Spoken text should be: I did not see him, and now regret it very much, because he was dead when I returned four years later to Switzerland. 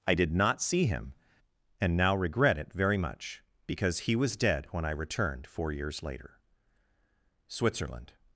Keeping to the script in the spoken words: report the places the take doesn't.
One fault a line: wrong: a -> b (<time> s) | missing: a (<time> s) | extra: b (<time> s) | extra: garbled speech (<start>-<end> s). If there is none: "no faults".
missing: to (6.4 s)